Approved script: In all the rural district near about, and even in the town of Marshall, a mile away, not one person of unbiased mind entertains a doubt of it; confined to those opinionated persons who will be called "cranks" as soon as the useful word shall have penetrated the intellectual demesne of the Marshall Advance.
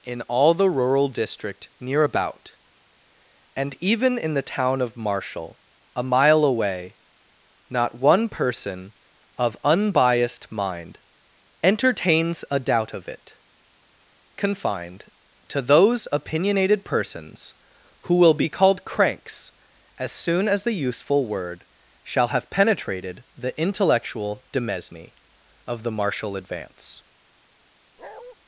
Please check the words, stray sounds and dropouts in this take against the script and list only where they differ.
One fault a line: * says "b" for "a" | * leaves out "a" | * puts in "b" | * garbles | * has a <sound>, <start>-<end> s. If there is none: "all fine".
* has a bark, 28.0-28.4 s